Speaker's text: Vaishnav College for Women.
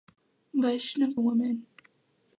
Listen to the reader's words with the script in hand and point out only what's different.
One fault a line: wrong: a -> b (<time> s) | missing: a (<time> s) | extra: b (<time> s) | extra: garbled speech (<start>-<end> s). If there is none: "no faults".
missing: College for (1.1 s)